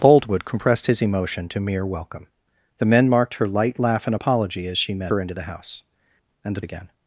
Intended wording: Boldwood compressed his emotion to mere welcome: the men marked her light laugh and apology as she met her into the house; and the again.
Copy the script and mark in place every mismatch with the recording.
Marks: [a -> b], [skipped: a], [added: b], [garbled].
Boldwood compressed his emotion to mere welcome: the men marked her light laugh and apology as she met her into the house; and the again.